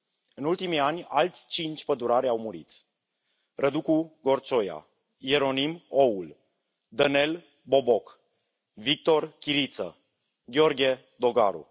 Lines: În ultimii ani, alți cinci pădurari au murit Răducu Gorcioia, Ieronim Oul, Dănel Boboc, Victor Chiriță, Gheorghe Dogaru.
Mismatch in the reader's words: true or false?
false